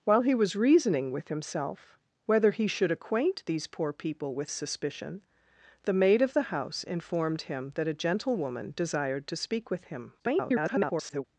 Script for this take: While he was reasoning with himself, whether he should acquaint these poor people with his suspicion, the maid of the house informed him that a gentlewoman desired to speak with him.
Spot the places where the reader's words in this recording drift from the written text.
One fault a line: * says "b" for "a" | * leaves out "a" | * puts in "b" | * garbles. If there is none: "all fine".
* leaves out "his"
* garbles